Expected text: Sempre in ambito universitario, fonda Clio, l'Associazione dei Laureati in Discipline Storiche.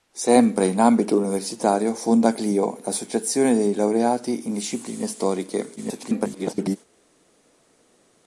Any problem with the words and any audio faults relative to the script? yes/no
yes